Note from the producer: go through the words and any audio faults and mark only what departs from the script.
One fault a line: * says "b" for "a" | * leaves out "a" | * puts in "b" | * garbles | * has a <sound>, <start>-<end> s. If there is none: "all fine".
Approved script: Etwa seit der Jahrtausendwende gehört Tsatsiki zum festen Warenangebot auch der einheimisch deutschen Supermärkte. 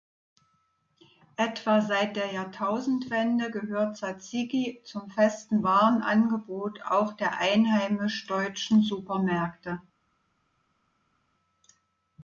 all fine